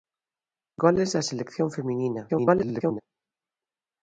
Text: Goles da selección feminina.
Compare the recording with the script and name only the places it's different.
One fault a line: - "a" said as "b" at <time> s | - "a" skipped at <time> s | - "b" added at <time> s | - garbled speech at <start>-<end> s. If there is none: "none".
- garbled speech at 2.3-3.0 s